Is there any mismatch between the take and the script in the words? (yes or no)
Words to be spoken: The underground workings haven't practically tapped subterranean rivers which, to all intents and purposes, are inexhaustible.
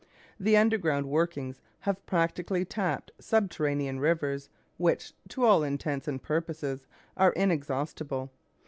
yes